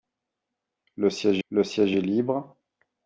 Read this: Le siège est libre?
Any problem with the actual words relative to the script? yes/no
yes